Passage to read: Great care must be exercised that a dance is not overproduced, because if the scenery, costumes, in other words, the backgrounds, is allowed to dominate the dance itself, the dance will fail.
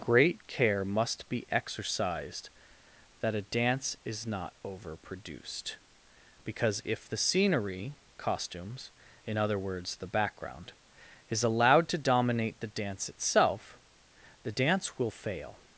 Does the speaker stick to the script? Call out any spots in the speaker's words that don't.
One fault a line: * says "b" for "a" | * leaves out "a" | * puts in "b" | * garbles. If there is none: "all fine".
* says "background" for "backgrounds"